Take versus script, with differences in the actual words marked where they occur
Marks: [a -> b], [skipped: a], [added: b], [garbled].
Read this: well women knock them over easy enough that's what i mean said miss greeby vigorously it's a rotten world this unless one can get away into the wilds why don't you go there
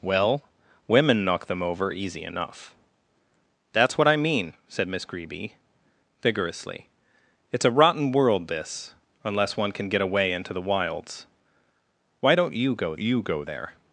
well women knock them over easy enough that's what i mean said miss greeby vigorously it's a rotten world this unless one can get away into the wilds why don't you go [added: you go] there